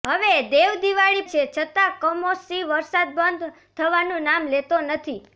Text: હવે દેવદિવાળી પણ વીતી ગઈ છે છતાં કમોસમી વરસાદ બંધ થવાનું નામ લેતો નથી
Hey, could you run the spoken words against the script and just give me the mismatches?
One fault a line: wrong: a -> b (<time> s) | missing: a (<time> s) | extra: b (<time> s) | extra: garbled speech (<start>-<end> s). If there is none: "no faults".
missing: પણ વીતી ગઈ (1.2 s)